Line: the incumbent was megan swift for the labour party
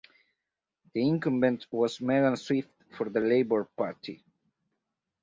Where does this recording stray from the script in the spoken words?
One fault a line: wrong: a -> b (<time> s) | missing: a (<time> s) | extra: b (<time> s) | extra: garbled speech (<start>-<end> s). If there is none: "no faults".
no faults